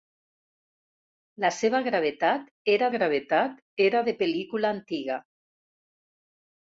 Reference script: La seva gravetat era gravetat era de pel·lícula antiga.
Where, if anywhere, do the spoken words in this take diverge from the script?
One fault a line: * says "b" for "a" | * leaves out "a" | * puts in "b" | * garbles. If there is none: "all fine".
all fine